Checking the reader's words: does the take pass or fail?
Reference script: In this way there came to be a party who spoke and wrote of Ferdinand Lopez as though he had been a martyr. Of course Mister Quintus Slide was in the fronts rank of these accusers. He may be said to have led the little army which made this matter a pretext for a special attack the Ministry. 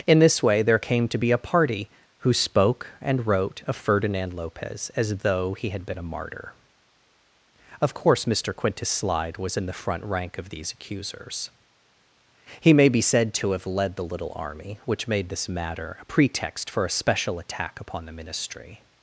fail